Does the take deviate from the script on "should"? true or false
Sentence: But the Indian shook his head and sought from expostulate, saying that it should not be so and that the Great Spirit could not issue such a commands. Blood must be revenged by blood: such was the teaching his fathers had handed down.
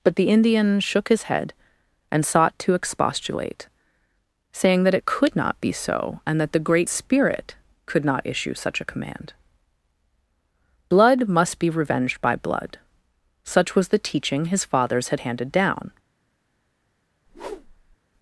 true